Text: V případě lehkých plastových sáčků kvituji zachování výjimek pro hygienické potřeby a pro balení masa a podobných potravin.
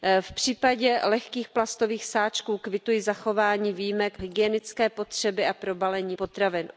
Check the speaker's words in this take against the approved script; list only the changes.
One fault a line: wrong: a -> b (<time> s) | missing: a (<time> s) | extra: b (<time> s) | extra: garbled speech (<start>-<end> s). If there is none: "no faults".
missing: pro (4.2 s)
missing: masa a podobných (6.2 s)